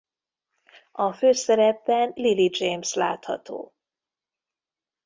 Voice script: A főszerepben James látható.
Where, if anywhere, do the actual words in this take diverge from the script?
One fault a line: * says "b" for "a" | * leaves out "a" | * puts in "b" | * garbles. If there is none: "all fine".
* puts in "Lily"